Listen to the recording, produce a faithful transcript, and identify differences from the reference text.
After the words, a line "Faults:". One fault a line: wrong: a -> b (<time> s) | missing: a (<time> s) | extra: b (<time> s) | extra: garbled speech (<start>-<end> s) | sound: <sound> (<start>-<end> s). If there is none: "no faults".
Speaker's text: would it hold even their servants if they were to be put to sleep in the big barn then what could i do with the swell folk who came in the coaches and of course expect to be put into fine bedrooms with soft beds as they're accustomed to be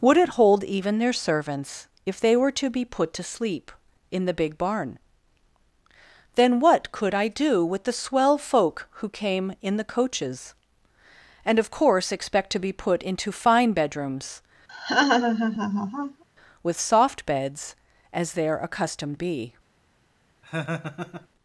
would it hold even their servants if they were to be put to sleep in the big barn then what could i do with the swell folk who came in the coaches and of course expect to be put into fine bedrooms with soft beds as they're accustomed be
Faults:
sound: laugh (14.7-16.2 s)
missing: to (19.2 s)
sound: laugh (20.4-21.3 s)